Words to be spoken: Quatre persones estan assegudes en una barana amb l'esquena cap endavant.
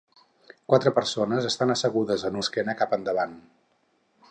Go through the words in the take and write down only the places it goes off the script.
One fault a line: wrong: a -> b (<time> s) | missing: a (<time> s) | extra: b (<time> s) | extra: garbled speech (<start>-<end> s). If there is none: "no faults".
missing: una barana amb (2.4 s)